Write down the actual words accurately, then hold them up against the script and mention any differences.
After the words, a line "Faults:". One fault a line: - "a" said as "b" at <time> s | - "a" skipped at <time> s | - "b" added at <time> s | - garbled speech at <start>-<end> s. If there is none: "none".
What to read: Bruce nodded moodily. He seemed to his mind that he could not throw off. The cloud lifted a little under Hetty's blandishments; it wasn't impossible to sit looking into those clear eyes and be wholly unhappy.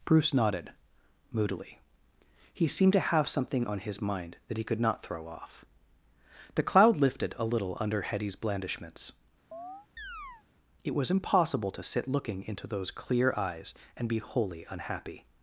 Bruce nodded moodily. He seemed to have something on his mind that he could not throw off. The cloud lifted a little under Hetty's blandishments; it was impossible to sit looking into those clear eyes and be wholly unhappy.
Faults:
- "have something on" added at 3.0 s
- "wasn't" said as "was" at 10.9 s